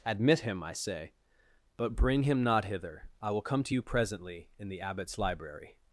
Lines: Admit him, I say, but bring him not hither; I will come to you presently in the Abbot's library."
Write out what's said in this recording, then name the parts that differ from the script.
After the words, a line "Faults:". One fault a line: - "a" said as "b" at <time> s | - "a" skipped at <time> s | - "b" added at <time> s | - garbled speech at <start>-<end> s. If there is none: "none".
Admit him, I say, but bring him not hither; I will come to you presently in the Abbot's library."
Faults:
none